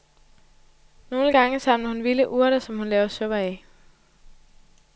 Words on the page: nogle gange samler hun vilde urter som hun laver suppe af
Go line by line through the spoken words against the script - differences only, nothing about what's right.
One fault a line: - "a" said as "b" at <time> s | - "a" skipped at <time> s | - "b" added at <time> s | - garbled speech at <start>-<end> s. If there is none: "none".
none